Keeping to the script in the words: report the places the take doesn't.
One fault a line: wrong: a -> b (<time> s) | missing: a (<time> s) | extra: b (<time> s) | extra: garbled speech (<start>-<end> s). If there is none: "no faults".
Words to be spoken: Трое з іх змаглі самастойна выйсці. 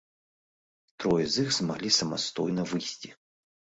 no faults